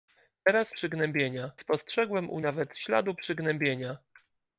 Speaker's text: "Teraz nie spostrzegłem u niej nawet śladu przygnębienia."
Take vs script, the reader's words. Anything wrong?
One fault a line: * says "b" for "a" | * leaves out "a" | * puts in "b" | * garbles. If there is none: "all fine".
* says "przygnębienia" for "nie"
* leaves out "niej"